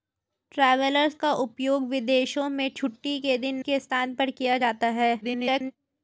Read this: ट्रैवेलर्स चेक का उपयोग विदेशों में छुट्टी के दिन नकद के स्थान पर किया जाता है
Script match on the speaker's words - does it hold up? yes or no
no